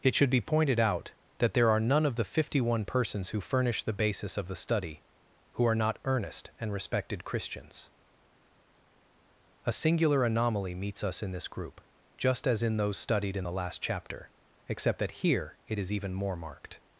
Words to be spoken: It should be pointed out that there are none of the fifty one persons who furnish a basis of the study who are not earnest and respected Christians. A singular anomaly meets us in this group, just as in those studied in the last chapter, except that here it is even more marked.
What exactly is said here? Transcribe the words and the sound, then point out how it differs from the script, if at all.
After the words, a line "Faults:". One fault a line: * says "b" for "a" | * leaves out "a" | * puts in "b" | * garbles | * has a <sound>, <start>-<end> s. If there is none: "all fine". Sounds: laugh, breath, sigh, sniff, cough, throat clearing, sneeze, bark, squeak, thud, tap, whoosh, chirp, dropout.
It should be pointed out that there are none of the fifty one persons who furnish the basis of the study who are not earnest and respected Christians. A singular anomaly meets us in this group, just as in those studied in the last chapter, except that here it is even more marked.
Faults:
* says "the" for "a"